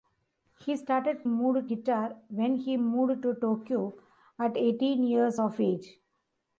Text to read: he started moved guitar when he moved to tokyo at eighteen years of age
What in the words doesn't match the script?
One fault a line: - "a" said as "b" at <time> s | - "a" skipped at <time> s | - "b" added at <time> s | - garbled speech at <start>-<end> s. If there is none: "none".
none